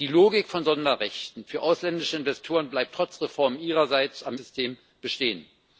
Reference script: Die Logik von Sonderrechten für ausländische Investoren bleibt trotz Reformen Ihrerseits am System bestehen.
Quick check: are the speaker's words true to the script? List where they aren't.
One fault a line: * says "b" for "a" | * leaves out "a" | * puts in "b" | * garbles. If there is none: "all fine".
all fine